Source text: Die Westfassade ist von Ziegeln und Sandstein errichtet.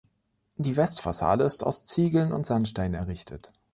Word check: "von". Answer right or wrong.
wrong